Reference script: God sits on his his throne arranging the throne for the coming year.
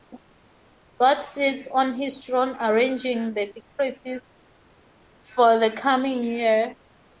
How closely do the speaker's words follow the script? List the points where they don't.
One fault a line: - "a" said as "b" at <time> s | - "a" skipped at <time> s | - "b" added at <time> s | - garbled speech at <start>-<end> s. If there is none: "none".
- "his" skipped at 2.3 s
- "throne" said as "decrees" at 3.5 s